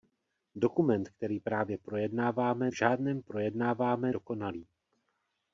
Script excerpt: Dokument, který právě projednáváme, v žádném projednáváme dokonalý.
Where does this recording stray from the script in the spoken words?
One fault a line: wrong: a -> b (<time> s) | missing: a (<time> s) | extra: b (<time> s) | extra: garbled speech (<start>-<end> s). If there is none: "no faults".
no faults